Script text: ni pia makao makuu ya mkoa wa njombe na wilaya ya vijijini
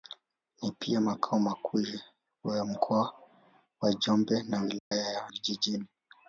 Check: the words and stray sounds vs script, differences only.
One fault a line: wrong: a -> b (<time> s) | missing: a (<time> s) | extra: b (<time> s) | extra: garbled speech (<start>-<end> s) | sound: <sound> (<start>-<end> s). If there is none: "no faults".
sound: dropout (4.8-4.9 s)